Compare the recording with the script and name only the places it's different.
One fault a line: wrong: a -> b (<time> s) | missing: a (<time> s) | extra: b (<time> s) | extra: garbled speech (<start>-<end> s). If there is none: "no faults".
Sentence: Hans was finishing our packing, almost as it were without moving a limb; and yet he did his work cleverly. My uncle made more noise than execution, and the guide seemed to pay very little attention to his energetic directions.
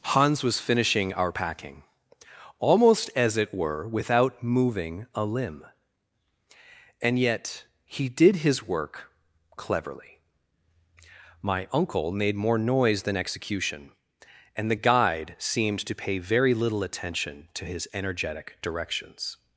no faults